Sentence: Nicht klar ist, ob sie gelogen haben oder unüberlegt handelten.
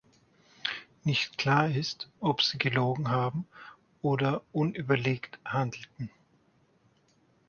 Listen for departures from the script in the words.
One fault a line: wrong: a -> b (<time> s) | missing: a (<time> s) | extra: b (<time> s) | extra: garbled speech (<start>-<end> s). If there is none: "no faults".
no faults